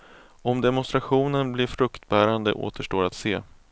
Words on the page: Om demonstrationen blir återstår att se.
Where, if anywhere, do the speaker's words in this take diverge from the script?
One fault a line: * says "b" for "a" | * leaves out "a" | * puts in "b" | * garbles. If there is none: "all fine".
* puts in "fruktbärande"